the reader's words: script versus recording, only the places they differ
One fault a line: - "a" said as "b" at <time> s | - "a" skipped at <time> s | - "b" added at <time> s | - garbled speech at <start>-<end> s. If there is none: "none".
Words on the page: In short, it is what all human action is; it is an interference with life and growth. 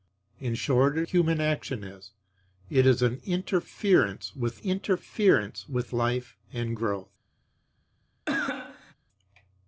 - "is what all" skipped at 1.1 s
- "interference with" added at 4.6 s